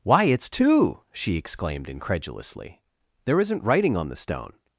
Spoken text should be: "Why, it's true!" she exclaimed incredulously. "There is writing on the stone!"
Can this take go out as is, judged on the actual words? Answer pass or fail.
fail